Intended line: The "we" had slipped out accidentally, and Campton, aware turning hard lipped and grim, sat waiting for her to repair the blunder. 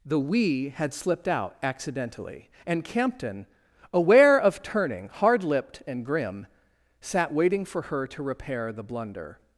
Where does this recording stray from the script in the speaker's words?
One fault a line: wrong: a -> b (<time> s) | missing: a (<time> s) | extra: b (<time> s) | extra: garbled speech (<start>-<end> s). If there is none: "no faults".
extra: of (4.4 s)